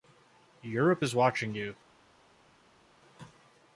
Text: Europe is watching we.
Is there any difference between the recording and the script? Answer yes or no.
yes